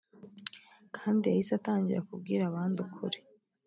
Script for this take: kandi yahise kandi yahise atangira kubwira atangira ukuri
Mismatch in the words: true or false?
true